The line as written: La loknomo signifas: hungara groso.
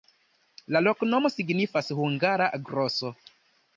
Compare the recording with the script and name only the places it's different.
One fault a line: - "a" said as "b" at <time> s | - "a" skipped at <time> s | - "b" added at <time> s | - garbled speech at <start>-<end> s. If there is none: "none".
none